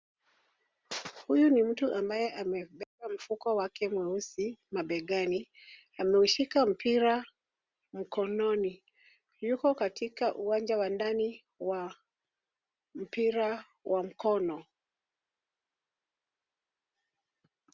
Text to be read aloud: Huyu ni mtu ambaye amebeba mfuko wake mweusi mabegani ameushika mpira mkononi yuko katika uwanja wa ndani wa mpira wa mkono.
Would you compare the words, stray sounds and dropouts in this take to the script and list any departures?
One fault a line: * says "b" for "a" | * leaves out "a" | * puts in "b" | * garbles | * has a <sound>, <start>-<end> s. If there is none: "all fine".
all fine